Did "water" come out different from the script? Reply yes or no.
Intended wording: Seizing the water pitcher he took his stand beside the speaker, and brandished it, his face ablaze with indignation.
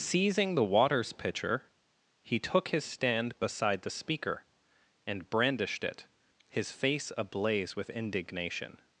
yes